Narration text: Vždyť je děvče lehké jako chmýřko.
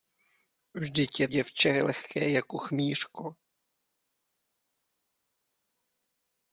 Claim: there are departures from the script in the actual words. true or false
false